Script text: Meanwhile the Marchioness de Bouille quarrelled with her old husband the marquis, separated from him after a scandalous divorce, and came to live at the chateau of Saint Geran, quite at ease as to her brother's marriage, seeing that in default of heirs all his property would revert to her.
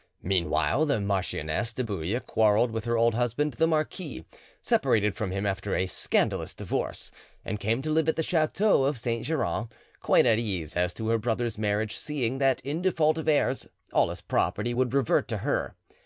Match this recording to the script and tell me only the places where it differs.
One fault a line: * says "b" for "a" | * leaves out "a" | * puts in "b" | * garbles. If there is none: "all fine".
all fine